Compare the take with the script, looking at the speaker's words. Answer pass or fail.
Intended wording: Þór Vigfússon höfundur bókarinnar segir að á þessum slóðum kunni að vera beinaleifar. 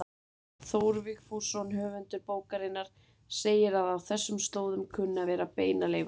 pass